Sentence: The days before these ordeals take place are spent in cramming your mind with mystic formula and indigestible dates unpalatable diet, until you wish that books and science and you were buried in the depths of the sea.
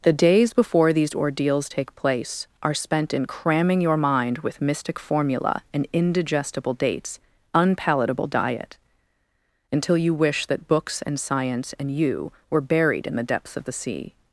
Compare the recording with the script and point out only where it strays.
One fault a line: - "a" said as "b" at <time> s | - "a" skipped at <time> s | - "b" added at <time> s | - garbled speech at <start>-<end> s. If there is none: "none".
none